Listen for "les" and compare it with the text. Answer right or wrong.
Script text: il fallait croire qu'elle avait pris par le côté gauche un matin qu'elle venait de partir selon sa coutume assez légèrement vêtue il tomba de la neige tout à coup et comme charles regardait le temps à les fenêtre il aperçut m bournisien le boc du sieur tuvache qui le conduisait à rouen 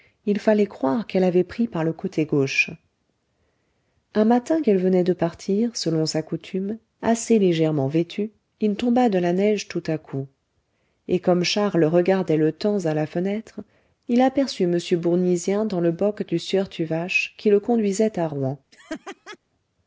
wrong